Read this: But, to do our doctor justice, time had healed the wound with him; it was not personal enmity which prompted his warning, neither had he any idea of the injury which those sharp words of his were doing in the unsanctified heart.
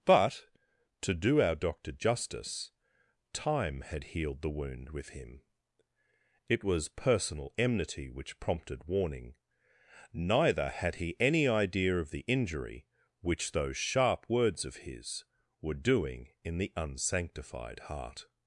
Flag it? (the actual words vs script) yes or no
yes